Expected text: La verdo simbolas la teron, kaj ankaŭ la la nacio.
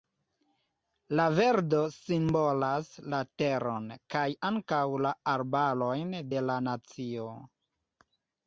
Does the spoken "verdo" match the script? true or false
true